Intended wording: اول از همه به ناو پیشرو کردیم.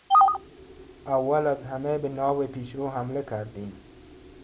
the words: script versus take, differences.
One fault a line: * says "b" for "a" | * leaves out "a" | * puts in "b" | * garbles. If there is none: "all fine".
* puts in "حمله"